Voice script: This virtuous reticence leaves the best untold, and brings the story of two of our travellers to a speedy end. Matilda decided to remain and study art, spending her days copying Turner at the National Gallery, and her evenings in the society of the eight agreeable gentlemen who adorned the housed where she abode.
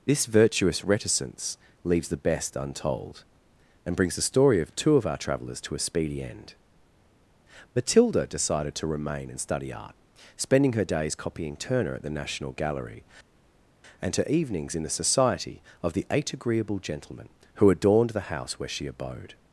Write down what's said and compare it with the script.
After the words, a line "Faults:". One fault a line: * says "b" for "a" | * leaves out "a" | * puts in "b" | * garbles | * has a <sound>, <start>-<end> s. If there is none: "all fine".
This virtuous reticence leaves the best untold, and brings the story of two of our travellers to a speedy end. Matilda decided to remain and study art, spending her days copying Turner at the National Gallery, and her evenings in the society of the eight agreeable gentlemen who adorned the house where she abode.
Faults:
* says "house" for "housed"